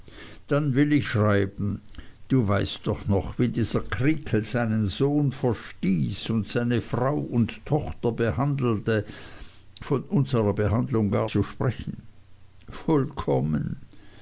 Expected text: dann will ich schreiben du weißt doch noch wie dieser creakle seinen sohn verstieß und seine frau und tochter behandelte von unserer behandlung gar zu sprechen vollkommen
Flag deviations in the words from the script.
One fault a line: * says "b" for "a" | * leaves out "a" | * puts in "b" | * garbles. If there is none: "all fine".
all fine